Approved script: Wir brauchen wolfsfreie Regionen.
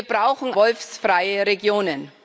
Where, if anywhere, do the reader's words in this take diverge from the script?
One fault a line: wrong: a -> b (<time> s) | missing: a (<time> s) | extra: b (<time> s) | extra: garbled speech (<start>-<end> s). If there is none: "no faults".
no faults